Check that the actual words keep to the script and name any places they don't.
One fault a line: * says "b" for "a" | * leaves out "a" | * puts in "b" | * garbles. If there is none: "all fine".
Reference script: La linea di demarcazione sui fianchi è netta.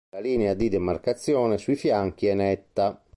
all fine